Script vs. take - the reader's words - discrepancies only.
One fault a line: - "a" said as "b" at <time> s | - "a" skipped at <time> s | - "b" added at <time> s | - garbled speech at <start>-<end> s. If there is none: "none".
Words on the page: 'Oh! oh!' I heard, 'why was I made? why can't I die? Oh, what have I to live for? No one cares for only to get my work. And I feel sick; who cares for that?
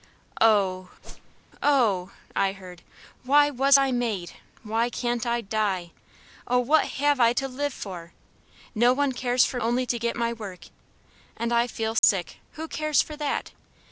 none